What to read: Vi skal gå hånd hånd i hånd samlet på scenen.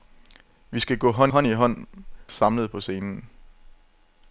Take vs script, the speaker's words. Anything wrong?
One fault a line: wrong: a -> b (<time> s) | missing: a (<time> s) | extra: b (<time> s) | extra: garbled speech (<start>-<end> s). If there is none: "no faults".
no faults